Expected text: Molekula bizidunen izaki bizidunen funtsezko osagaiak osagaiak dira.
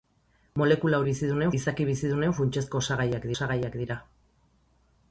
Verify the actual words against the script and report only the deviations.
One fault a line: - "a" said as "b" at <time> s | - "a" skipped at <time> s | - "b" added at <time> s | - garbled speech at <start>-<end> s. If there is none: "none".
none